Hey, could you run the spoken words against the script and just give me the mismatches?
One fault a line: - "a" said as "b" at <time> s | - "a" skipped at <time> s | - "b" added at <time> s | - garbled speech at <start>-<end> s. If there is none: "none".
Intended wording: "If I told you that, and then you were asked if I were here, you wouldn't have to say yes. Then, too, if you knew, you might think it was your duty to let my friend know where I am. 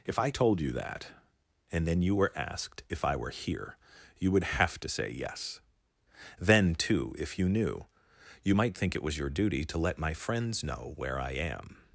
- "wouldn't" said as "would" at 4.3 s
- "friend" said as "friends" at 10.1 s